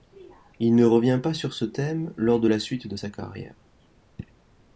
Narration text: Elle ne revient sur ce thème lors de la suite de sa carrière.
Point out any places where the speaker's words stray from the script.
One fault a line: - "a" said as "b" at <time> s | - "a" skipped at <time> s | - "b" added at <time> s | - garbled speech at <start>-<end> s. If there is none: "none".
- "Elle" said as "Il" at 0.6 s
- "pas" added at 1.2 s